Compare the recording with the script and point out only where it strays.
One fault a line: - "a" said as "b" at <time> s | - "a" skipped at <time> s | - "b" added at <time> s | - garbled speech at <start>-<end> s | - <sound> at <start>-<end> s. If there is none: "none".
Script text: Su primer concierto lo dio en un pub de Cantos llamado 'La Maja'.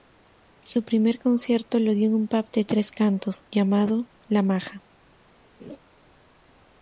- "Tres" added at 2.6 s
- laugh at 5.6-5.8 s